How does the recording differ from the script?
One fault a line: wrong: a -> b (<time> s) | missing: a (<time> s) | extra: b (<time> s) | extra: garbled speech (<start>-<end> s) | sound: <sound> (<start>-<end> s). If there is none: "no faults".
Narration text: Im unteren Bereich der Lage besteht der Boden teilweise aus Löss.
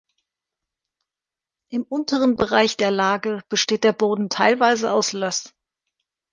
no faults